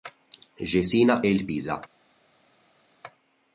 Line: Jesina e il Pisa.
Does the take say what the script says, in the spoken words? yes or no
yes